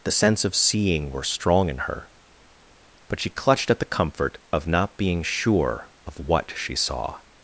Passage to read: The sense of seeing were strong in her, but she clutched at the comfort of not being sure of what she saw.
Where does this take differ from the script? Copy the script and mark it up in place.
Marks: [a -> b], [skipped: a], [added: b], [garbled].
The sense of seeing were strong in her, but she clutched at the comfort of not being sure of what she saw.